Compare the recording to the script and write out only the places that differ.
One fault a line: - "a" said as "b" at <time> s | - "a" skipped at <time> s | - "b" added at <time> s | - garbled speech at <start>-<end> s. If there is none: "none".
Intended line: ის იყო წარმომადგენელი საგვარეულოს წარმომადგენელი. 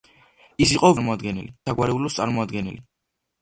none